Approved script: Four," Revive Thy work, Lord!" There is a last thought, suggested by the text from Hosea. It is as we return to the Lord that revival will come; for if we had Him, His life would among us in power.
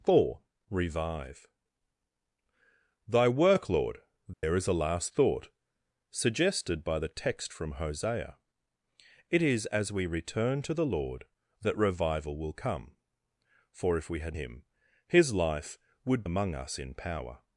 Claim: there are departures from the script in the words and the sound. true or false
true